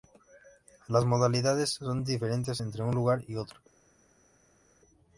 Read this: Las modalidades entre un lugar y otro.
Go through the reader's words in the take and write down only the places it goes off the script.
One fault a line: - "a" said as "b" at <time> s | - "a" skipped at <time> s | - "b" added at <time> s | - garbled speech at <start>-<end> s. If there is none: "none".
- "son diferentes" added at 1.7 s